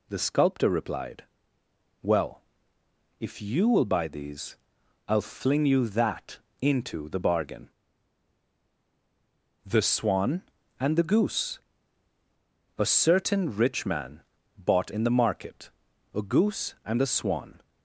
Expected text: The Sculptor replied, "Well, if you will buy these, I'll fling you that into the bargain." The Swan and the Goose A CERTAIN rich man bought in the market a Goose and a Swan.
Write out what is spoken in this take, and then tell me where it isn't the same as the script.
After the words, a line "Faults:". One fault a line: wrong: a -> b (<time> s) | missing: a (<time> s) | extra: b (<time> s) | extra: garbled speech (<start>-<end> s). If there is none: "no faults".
The Sculptor replied, "Well, if you will buy these, I'll fling you that into the bargain." The Swan and the Goose A CERTAIN rich man bought in the market a Goose and a Swan.
Faults:
no faults